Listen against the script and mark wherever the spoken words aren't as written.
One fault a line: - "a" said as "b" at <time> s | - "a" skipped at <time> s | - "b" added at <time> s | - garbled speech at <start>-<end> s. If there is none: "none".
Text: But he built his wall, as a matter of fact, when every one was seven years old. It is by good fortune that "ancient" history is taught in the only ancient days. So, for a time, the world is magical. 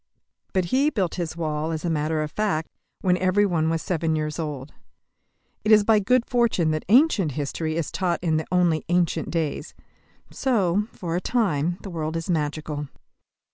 none